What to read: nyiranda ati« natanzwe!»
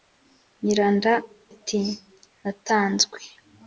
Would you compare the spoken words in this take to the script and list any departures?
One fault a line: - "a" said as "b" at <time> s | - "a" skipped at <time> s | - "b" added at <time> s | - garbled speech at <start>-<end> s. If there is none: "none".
none